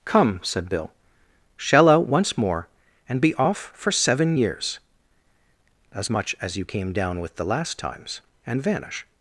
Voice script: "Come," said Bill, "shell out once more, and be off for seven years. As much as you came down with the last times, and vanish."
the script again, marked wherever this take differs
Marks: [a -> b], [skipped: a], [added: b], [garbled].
"Come," said Bill, "shell out once more, and be off for seven years. As much as you came down with the last times, and vanish."